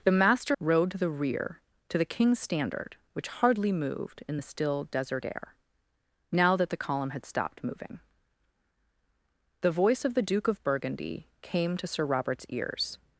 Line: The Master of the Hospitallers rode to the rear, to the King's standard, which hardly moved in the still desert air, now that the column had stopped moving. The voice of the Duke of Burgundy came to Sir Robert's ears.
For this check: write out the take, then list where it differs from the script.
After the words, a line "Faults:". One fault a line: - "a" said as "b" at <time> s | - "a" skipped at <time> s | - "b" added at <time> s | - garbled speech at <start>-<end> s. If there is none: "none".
The Master rode to the rear, to the King's standard, which hardly moved in the still desert air, now that the column had stopped moving. The voice of the Duke of Burgundy came to Sir Robert's ears.
Faults:
- "of the Hospitallers" skipped at 0.6 s